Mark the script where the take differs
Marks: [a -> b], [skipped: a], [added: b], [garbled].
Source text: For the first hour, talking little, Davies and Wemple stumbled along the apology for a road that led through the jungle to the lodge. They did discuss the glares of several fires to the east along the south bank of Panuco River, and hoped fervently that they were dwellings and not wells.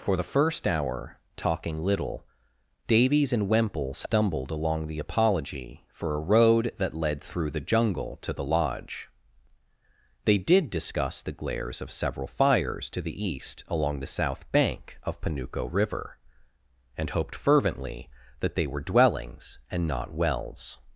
For the first hour, talking little, Davies and Wemple stumbled along the apology for a road that led through the jungle to the lodge. They did discuss the glares of several fires to the east along the south bank of Panuco River, and hoped fervently that they were dwellings and not wells.